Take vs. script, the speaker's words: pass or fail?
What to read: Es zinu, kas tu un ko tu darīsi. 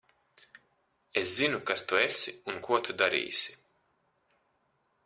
fail